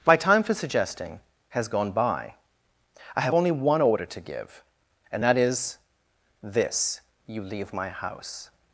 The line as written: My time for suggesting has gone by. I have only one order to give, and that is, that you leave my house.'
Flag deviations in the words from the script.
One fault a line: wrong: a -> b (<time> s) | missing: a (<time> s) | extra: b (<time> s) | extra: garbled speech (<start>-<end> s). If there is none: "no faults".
wrong: that -> this (6.4 s)